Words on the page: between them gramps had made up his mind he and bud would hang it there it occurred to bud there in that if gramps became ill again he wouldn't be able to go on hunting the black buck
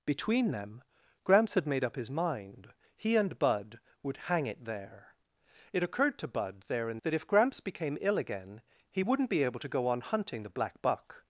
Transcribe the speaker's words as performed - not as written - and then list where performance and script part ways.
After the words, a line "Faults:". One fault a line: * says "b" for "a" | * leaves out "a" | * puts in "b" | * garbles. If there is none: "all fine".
between them gramps had made up his mind he and bud would hang it there it occurred to bud there in that if gramps became ill again he wouldn't be able to go on hunting the black buck
Faults:
all fine